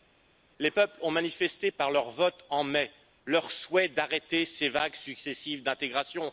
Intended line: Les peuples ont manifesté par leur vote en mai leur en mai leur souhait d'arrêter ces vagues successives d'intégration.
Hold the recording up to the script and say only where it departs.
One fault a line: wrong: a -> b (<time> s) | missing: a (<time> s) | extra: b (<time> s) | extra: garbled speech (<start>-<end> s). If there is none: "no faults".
missing: en mai leur (3.5 s)